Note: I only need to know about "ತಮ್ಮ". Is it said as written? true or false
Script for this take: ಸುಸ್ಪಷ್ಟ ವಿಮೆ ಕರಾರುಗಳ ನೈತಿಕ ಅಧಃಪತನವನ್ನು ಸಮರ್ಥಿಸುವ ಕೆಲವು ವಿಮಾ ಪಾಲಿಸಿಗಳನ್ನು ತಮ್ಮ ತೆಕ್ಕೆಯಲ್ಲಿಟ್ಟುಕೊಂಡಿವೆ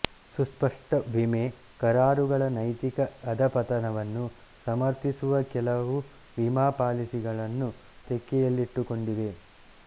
false